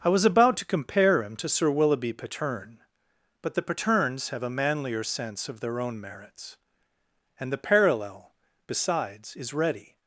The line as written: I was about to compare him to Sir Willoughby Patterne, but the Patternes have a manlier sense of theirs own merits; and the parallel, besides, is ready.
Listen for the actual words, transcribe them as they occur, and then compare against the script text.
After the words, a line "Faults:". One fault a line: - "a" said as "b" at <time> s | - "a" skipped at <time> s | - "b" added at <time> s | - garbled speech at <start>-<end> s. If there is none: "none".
I was about to compare him to Sir Willoughby Patterne, but the Patternes have a manlier sense of their own merits; and the parallel, besides, is ready.
Faults:
- "theirs" said as "their" at 5.6 s